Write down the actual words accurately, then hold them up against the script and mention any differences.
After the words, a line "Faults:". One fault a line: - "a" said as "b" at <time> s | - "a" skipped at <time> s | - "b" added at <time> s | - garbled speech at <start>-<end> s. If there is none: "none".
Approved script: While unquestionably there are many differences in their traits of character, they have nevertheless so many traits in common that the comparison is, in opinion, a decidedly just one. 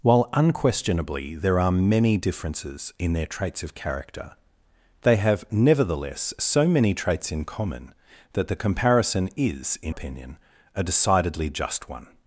While unquestionably there are many differences in their traits of character, they have nevertheless so many traits in common that the comparison is, in opinion, a decidedly just one.
Faults:
none